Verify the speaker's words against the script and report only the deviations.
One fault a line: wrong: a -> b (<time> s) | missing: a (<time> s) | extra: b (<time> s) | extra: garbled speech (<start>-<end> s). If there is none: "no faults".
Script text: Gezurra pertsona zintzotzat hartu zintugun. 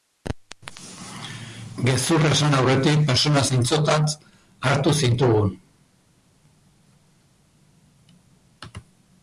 extra: esan aurretik (2.4 s)